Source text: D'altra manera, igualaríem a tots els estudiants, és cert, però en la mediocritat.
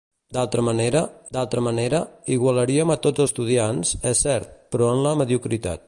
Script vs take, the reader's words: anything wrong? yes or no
yes